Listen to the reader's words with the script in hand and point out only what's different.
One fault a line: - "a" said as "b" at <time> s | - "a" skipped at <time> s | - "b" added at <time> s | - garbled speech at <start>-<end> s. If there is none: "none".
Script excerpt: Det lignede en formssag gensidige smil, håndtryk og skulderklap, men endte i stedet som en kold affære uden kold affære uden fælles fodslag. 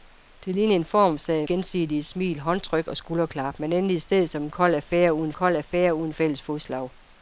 none